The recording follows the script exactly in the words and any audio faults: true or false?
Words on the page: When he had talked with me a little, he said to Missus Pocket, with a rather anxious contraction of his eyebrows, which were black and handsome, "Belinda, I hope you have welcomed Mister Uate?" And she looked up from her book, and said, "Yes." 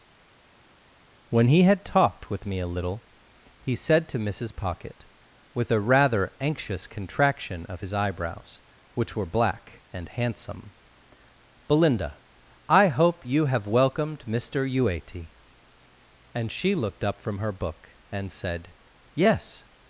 true